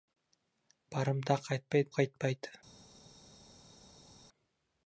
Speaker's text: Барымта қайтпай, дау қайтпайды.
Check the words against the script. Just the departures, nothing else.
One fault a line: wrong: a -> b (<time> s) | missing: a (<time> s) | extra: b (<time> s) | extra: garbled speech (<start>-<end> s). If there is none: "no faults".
missing: дау (1.9 s)